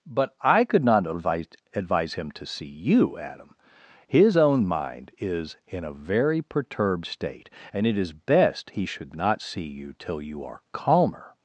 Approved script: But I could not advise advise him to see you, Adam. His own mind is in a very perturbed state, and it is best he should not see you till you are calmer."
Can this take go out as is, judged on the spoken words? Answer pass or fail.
pass